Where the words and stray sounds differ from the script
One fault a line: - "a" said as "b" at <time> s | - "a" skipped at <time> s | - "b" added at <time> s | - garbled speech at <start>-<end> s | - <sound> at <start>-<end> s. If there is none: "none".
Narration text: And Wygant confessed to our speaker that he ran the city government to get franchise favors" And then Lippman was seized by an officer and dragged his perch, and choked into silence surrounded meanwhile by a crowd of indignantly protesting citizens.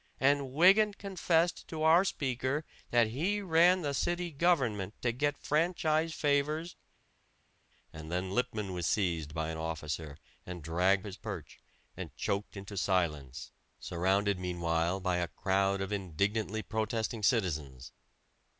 none